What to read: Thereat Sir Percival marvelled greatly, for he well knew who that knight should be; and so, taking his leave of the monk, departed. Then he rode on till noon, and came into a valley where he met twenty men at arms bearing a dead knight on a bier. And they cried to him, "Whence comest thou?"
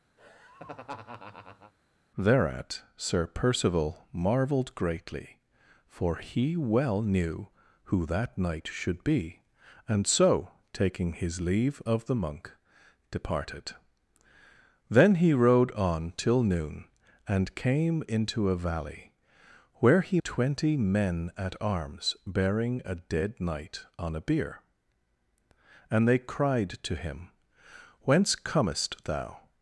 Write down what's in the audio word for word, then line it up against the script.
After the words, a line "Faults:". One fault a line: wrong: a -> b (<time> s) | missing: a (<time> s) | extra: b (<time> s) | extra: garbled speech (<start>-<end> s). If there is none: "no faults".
Thereat Sir Percival marvelled greatly, for he well knew who that knight should be; and so, taking his leave of the monk, departed. Then he rode on till noon, and came into a valley where he twenty men at arms bearing a dead knight on a bier. And they cried to him, "Whence comest thou?"
Faults:
missing: met (20.2 s)